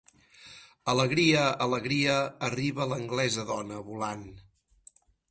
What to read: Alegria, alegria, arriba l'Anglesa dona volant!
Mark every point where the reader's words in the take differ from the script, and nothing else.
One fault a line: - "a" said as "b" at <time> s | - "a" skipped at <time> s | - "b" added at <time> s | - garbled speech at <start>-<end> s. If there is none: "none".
none